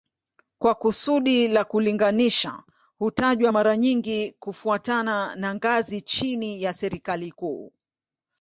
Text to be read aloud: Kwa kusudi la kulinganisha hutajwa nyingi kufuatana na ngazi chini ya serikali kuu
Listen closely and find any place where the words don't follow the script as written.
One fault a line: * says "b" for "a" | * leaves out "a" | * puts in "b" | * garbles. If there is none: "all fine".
* puts in "mara"